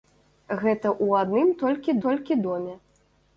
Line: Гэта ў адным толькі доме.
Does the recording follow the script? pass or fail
fail